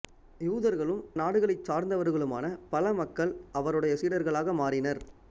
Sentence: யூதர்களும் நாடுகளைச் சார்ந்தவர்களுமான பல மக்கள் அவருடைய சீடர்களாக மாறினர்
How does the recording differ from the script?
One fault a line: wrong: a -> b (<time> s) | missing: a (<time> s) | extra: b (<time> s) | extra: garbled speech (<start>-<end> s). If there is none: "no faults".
no faults